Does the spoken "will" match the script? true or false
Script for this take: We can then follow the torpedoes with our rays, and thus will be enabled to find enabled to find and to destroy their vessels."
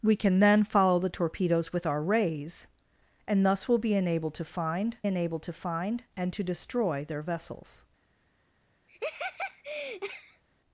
true